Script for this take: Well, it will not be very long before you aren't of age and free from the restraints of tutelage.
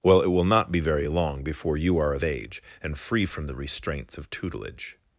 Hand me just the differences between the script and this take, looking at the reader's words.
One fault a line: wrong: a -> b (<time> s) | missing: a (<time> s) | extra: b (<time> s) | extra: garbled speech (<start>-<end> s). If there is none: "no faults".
wrong: aren't -> are (2.0 s)